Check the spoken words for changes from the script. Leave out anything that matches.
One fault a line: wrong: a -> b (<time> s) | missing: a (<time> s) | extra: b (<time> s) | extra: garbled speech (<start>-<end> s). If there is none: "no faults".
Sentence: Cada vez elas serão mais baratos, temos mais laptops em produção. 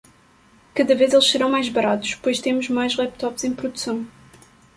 wrong: elas -> eles (1.1 s)
extra: pois (2.1 s)